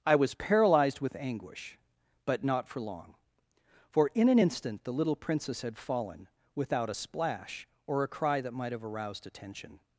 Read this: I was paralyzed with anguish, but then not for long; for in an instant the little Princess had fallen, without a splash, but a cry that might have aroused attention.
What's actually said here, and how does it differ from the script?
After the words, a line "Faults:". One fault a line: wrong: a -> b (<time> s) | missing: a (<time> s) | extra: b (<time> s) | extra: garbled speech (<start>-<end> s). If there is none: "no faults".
I was paralyzed with anguish, but not for long; for in an instant the little Princess had fallen, without a splash, or a cry that might have aroused attention.
Faults:
missing: then (2.4 s)
wrong: but -> or (7.9 s)